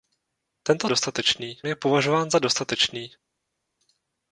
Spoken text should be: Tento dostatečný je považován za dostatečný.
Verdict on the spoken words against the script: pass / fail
pass